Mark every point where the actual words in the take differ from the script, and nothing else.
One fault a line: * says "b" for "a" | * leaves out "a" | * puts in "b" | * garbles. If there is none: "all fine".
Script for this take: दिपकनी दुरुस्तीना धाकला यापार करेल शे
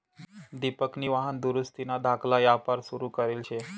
* puts in "वाहन"
* puts in "सुरू"